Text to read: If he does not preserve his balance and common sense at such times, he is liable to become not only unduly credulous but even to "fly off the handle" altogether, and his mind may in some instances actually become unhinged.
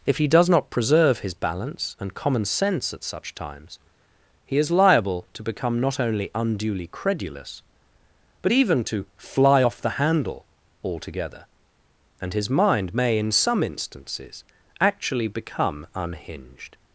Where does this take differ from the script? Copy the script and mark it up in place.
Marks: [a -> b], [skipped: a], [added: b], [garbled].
If he does not preserve his balance and common sense at such times, he is liable to become not only unduly credulous but even to "fly off the handle" altogether, and his mind may in some instances actually become unhinged.